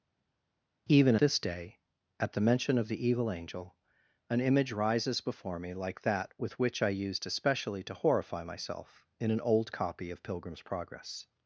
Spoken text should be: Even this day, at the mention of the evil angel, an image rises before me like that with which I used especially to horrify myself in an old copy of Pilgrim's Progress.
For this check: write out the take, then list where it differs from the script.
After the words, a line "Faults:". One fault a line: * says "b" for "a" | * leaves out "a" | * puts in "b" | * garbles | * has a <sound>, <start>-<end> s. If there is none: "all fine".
Even this day, at the mention of the evil angel, an image rises before me like that with which I used especially to horrify myself in an old copy of Pilgrim's Progress.
Faults:
all fine